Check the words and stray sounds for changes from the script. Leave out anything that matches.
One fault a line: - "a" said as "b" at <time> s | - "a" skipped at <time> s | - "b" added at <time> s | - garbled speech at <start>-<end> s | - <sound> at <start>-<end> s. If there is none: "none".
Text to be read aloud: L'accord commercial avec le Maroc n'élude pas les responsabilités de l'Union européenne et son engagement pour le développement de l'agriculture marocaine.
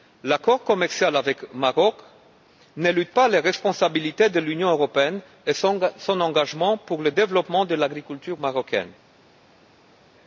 none